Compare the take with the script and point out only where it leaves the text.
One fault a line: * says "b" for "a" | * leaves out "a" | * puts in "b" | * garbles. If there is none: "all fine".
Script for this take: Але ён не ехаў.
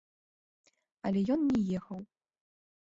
all fine